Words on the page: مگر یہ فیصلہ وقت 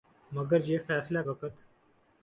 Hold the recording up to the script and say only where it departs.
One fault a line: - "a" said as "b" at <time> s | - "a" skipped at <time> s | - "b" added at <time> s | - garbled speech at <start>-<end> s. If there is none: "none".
none